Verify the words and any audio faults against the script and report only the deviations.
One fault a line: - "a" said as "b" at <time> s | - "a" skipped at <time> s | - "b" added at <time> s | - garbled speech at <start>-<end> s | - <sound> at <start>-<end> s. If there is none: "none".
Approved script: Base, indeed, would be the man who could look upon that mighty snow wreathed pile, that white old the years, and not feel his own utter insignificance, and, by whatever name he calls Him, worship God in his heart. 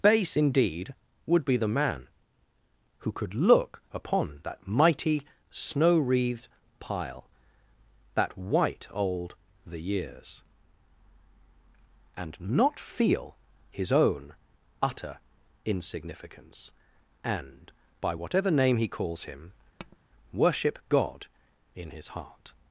- tap at 19.8-20.0 s